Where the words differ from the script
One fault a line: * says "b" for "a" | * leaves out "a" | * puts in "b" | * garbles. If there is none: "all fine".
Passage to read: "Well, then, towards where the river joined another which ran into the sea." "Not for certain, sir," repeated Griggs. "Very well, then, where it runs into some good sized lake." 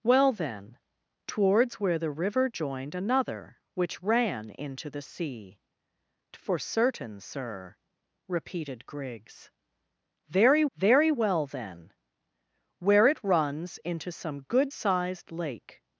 * leaves out "Not"
* puts in "very"